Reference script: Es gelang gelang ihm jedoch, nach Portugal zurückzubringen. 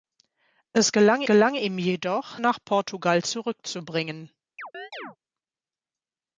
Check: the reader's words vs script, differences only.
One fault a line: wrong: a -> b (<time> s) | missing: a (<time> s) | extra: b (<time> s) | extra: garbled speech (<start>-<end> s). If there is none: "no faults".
no faults